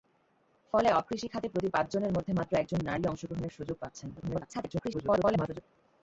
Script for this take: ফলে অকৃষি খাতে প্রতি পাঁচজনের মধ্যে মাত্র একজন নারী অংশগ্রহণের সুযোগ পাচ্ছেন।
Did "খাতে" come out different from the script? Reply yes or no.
no